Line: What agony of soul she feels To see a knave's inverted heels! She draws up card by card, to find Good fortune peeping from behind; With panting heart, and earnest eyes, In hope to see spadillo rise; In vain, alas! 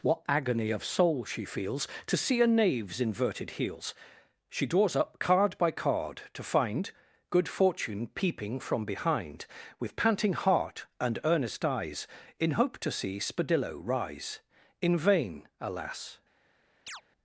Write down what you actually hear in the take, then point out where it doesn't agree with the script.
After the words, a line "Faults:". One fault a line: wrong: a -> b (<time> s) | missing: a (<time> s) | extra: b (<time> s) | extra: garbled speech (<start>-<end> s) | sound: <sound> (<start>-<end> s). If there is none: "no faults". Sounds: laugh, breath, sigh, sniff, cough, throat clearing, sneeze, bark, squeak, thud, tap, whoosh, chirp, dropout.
What agony of soul she feels To see a knave's inverted heels! She draws up card by card, to find Good fortune peeping from behind; With panting heart, and earnest eyes, In hope to see spadillo rise; In vain, alas!
Faults:
sound: chirp (16.9-17.0 s)